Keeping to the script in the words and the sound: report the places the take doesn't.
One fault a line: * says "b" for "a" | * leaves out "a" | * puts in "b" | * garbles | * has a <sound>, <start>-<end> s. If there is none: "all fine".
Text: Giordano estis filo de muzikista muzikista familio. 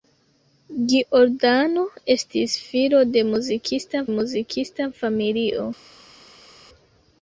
all fine